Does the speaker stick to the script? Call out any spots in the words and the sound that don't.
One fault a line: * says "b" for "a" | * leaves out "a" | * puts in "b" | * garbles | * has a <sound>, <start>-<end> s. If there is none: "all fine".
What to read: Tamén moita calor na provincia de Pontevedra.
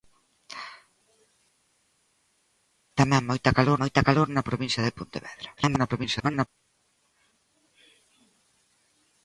* puts in "moita calor"
* garbles